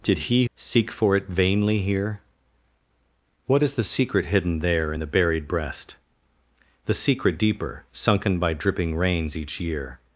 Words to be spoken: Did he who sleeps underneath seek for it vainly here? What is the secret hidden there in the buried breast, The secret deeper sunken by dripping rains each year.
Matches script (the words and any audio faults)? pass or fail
fail